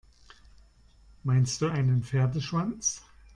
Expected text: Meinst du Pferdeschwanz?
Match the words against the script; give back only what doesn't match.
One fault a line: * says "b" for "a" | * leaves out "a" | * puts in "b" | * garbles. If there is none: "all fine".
* puts in "einen"